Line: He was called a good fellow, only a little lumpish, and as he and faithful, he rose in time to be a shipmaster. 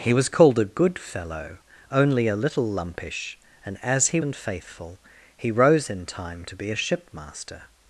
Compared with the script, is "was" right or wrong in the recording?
right